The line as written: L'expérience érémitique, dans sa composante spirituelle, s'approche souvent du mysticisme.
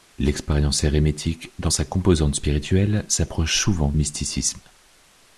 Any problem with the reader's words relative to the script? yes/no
yes